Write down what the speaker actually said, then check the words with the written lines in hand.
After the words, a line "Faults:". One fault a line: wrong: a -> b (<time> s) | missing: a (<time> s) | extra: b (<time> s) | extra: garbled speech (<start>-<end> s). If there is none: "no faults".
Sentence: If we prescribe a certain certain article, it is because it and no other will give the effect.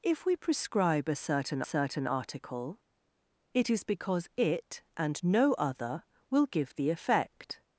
If we prescribe a certain certain article, it is because it and no other will give the effect.
Faults:
no faults